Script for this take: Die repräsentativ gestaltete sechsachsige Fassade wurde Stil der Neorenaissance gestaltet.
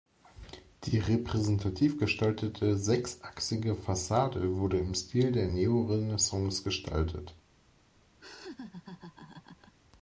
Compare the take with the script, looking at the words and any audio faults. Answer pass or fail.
fail